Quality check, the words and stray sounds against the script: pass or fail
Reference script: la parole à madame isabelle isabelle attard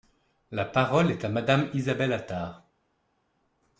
fail